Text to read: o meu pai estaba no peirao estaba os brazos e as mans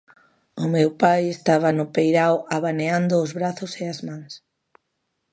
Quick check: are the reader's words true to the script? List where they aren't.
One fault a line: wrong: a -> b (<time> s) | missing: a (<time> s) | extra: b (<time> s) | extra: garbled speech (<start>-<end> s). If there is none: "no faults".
wrong: estaba -> abaneando (2.6 s)